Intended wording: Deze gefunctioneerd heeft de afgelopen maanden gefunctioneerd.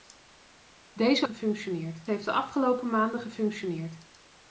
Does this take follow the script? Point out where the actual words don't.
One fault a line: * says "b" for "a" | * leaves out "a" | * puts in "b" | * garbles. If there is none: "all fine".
all fine